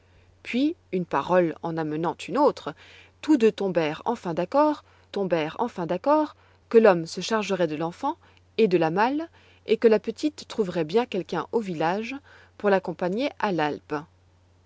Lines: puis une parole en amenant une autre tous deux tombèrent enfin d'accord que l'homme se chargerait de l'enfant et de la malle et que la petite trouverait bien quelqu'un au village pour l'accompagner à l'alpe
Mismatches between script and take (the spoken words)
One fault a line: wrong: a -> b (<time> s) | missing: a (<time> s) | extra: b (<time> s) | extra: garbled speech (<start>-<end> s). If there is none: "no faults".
extra: tombèrent enfin d'accord (5.1 s)